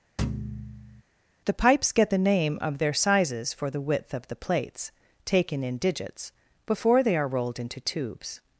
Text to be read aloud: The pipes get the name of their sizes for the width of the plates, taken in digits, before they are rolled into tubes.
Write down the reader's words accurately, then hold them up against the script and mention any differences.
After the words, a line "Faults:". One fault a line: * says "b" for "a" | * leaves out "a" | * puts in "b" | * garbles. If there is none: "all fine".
The pipes get the name of their sizes for the width of the plates, taken in digits, before they are rolled into tubes.
Faults:
all fine